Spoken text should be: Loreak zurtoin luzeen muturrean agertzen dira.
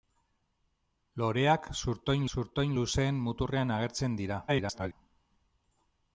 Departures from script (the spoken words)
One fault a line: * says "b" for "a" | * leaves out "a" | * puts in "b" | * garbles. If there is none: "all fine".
* puts in "zurtoin"
* garbles